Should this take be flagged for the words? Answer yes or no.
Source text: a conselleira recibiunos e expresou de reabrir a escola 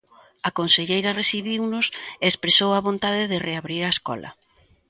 yes